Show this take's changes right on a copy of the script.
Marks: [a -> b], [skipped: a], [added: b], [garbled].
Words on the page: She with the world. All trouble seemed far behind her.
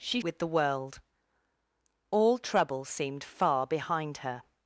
She with the world. All trouble seemed far behind her.